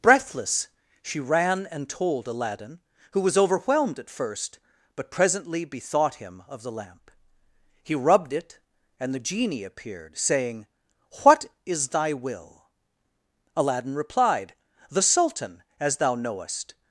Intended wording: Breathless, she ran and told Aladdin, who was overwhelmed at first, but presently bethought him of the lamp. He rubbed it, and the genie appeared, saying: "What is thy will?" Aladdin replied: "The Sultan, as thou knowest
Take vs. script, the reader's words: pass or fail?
pass